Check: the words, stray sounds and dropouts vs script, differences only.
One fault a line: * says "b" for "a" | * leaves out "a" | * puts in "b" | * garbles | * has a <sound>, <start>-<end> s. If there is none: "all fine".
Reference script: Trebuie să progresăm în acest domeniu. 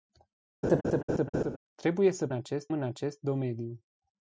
* has a laugh, 0.6-1.6 s
* says "acest" for "progresăm"